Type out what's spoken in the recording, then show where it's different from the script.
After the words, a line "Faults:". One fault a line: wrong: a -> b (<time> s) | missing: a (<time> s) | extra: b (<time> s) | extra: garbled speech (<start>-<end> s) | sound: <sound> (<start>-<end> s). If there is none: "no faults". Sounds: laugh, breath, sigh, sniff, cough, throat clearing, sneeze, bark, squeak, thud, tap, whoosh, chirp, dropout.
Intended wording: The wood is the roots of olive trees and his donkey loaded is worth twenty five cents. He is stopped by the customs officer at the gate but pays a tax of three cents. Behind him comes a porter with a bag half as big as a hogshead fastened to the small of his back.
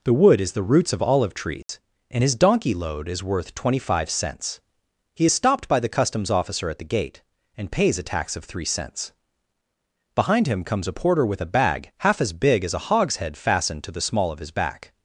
The wood is the roots of olive trees and his donkey load is worth twenty five cents. He is stopped by the customs officer at the gate and pays a tax of three cents. Behind him comes a porter with a bag half as big as a hogshead fastened to the small of his back.
Faults:
sound: dropout (1.6-1.7 s)
wrong: loaded -> load (2.7 s)
wrong: but -> and (7.6 s)